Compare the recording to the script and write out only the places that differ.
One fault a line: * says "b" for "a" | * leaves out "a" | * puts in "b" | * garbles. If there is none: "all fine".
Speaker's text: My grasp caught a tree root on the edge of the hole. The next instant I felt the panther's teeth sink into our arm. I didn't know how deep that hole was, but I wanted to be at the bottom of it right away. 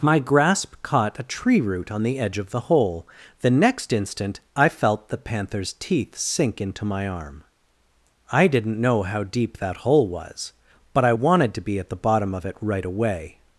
* says "my" for "our"